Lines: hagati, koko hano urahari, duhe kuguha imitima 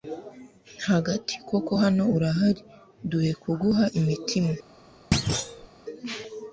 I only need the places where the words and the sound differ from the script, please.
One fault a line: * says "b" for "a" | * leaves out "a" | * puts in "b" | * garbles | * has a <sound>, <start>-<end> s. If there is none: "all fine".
* has a thud, 5.1-5.7 s